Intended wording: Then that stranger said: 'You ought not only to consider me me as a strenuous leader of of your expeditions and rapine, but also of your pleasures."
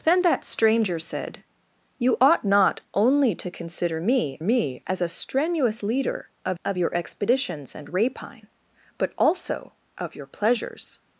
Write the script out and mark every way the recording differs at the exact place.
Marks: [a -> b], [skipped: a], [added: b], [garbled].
Then that stranger said: 'You ought not only to consider me me as a strenuous leader of of your expeditions and rapine, but also of your pleasures."